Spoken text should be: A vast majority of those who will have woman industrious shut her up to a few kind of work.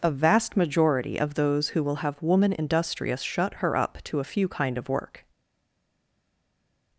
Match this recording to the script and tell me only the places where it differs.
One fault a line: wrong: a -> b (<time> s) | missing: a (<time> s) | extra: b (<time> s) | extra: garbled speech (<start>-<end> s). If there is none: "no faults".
no faults